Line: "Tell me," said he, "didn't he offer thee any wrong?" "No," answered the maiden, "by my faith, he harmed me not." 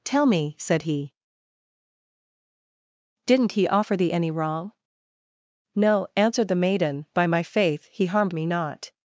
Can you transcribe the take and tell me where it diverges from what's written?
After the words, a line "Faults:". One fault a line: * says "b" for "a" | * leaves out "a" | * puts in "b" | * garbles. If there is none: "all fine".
"Tell me," said he, "didn't he offer thee any wrong?" "No," answered the maiden, "by my faith, he harmed me not."
Faults:
all fine